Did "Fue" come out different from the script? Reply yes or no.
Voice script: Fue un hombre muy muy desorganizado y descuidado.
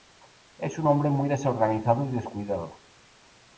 yes